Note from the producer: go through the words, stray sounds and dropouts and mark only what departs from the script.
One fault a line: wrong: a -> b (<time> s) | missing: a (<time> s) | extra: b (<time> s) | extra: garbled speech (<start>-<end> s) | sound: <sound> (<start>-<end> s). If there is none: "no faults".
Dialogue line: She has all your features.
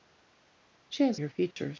missing: all (1.2 s)
sound: dropout (1.5-1.6 s)